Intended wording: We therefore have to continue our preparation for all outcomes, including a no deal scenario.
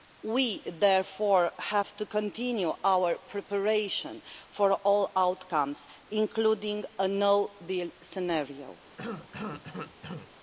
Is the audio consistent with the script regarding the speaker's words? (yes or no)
yes